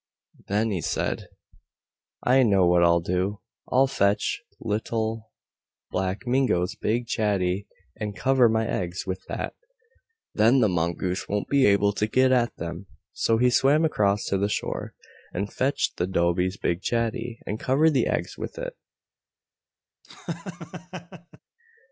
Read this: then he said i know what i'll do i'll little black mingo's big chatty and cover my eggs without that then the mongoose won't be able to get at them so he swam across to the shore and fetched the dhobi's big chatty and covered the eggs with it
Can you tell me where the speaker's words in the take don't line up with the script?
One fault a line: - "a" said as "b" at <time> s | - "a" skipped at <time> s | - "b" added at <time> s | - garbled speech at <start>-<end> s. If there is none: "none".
- "fetch" added at 3.9 s
- "without" said as "with" at 9.1 s